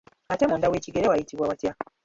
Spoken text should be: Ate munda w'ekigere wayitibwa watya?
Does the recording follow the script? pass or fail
pass